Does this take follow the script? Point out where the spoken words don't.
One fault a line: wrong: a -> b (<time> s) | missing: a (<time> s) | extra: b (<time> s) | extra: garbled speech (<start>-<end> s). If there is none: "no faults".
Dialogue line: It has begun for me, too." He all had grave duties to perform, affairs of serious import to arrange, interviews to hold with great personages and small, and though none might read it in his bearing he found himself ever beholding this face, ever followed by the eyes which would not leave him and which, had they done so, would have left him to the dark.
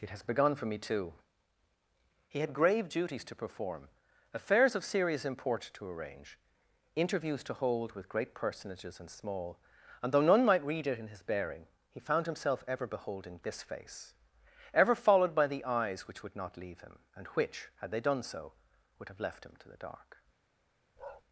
missing: all (2.4 s)